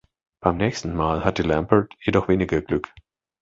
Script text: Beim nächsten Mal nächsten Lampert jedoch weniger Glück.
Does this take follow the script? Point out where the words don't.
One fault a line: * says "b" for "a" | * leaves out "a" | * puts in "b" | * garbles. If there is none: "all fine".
* says "hatte" for "nächsten"